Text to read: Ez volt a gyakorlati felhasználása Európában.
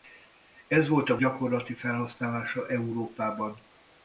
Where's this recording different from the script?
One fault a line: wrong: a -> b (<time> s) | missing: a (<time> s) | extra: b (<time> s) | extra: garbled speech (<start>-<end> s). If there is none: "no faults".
no faults